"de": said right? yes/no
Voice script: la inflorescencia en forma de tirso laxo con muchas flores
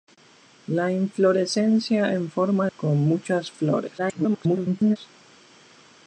no